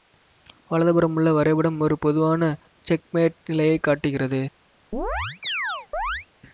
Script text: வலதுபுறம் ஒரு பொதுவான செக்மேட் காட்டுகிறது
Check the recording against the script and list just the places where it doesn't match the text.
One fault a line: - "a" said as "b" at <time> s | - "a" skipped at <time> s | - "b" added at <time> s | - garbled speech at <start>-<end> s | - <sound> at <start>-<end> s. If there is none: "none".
- "உள்ள வரைபடம்" added at 1.1 s
- "நிலையை" added at 3.5 s
- chirp at 4.9-6.3 s